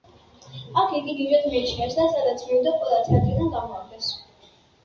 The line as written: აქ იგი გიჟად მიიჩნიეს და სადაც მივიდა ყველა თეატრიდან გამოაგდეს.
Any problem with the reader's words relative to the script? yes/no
no